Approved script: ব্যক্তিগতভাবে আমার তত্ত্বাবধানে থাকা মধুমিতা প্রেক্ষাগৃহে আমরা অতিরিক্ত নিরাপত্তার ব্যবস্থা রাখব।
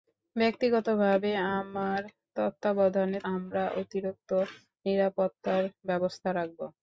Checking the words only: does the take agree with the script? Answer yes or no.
no